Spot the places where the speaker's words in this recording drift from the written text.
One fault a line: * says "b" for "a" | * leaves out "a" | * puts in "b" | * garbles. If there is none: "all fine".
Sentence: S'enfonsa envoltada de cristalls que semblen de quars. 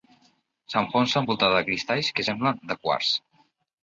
all fine